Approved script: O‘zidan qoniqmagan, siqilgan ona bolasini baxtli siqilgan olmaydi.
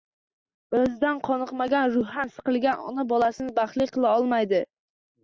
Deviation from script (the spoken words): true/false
true